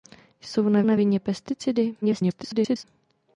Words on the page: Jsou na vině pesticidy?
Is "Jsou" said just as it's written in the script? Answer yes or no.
yes